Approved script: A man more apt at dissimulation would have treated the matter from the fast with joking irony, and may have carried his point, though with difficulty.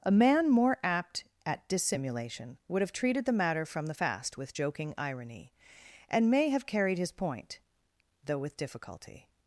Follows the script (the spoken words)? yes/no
yes